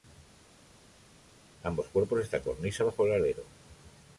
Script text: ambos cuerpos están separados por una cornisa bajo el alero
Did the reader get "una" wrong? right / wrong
wrong